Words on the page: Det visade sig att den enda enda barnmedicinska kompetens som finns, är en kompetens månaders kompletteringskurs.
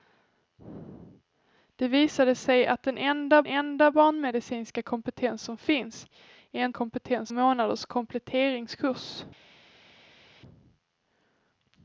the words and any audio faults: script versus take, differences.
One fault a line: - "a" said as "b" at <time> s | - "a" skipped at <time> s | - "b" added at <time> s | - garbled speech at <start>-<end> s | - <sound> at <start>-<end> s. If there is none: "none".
none